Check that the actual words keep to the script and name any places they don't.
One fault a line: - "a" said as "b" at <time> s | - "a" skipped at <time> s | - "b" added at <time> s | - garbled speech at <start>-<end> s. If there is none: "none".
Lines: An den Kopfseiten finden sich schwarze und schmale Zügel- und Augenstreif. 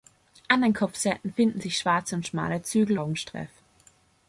- "und" skipped at 3.0 s